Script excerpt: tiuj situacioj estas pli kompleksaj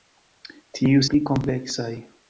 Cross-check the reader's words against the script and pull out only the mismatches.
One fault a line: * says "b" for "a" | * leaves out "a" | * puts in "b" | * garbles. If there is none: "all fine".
* leaves out "situacioj estas"